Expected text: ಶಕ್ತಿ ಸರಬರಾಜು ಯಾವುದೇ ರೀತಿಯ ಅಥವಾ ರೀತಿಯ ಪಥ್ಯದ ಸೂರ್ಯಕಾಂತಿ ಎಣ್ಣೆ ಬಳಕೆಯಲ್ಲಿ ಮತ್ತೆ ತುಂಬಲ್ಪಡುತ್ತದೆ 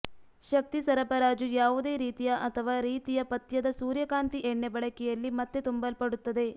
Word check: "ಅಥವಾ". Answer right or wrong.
right